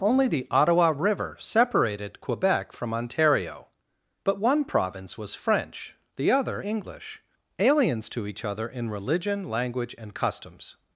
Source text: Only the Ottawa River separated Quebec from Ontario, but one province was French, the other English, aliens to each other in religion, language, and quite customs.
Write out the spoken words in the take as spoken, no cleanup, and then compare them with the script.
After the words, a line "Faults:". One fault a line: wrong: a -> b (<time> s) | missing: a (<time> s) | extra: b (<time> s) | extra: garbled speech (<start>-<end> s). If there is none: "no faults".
Only the Ottawa River separated Quebec from Ontario, but one province was French, the other English, aliens to each other in religion, language, and customs.
Faults:
missing: quite (10.1 s)